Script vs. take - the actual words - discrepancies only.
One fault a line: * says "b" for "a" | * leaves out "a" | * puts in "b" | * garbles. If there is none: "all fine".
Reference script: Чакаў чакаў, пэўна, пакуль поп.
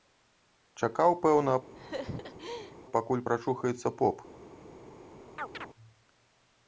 * leaves out "чакаў"
* puts in "прачухаецца"